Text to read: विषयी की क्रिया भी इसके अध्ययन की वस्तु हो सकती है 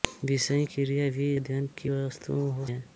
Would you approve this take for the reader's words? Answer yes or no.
no